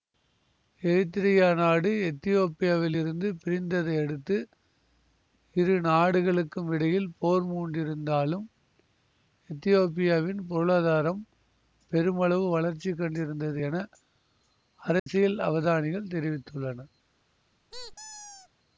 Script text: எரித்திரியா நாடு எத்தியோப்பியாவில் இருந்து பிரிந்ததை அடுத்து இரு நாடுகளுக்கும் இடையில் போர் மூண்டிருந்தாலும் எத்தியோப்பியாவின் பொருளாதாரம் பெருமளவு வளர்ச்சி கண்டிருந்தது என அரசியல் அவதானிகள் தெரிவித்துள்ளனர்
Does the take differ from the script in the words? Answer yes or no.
no